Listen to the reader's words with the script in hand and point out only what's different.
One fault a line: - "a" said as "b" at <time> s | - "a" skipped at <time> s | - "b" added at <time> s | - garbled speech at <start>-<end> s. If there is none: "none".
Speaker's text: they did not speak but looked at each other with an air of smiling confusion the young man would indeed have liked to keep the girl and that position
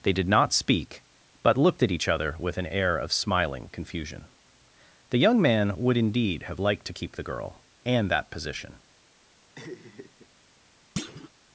none